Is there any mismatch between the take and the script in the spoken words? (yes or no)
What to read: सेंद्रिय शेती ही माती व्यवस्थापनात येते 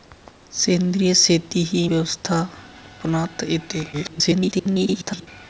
yes